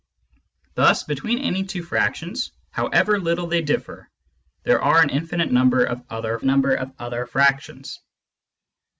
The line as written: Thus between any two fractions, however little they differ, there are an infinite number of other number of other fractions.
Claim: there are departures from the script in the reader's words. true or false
false